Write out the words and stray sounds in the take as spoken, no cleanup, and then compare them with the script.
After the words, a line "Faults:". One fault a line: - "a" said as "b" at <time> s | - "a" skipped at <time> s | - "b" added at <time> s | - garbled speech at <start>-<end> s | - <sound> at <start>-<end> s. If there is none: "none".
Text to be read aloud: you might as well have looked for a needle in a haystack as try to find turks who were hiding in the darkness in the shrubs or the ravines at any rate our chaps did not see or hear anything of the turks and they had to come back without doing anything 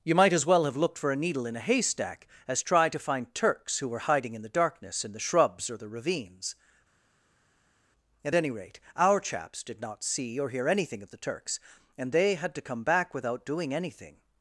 you might as well have looked for a needle in a haystack as try to find turks who were hiding in the darkness in the shrubs or the ravines at any rate our chaps did not see or hear anything of the turks and they had to come back without doing anything
Faults:
none